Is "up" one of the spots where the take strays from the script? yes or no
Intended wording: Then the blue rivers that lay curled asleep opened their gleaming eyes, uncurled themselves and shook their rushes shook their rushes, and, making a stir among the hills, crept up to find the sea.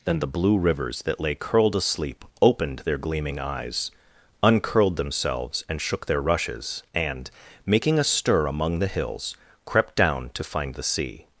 yes